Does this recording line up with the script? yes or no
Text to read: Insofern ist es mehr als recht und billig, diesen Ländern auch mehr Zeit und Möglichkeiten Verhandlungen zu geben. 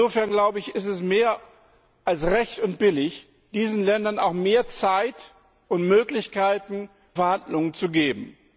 yes